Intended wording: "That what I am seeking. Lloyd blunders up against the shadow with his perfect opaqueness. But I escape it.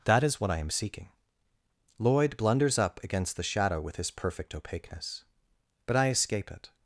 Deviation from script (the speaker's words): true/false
true